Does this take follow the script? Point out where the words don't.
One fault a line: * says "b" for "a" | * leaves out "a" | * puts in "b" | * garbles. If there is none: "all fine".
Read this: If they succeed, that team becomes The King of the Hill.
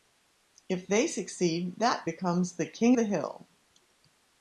* leaves out "team"
* leaves out "of"